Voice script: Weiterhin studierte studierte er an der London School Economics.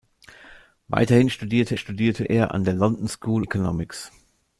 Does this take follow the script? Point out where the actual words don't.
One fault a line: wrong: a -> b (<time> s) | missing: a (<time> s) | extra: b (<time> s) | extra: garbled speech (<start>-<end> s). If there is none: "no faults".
no faults